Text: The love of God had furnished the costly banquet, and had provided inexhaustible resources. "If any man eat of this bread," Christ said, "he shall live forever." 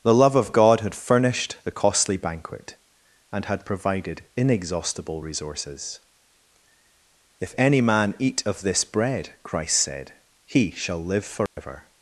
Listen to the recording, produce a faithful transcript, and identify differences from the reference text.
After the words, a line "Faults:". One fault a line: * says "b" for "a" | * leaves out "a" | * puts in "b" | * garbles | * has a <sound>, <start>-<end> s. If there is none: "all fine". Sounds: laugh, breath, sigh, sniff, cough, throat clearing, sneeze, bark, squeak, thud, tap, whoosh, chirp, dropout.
The love of God had furnished the costly banquet, and had provided inexhaustible resources. "If any man eat of this bread," Christ said, "he shall live forever."
Faults:
* has a dropout, 11.5-11.6 s